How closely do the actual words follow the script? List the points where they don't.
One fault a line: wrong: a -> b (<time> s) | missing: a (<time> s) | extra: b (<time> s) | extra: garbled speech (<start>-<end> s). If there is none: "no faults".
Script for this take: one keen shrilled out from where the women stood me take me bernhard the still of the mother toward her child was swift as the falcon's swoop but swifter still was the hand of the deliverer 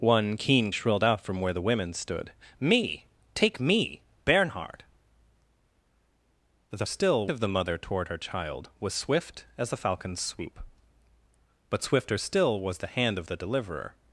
no faults